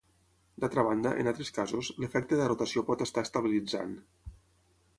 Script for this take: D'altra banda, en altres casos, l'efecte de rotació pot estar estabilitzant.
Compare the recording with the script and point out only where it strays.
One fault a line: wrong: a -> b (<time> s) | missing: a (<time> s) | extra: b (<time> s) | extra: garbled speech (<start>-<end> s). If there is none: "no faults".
no faults